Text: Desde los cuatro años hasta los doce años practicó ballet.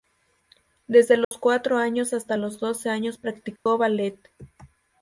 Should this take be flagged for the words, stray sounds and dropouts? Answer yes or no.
yes